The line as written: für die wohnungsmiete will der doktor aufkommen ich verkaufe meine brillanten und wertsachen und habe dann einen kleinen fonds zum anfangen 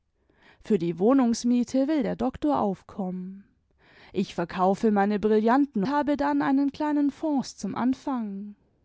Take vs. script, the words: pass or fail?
fail